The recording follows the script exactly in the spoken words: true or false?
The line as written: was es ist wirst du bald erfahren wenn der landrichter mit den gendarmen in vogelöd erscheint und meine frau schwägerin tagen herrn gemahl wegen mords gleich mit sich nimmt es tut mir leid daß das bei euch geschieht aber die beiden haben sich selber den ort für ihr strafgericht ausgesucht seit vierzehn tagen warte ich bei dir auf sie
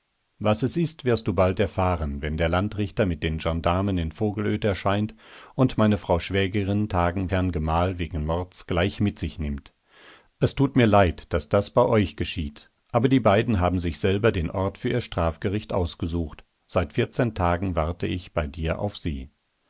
true